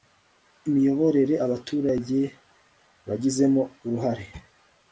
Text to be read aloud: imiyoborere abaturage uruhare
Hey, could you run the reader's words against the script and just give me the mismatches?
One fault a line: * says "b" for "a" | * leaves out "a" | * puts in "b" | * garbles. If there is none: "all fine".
* puts in "bagizemo"